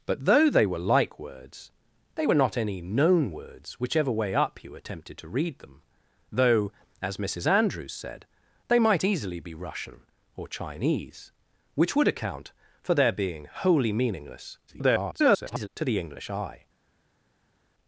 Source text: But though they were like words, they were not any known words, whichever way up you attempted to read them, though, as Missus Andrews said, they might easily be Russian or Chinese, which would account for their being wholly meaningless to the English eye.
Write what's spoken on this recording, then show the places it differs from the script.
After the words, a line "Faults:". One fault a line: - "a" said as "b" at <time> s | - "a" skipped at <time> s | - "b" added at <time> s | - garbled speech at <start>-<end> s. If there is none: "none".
But though they were like words, they were not any known words, whichever way up you attempted to read them, though, as Missus Andrews said, they might easily be Russian or Chinese, which would account for their being wholly meaningless [garbled] to the English eye.
Faults:
- garbled speech at 14.7-15.7 s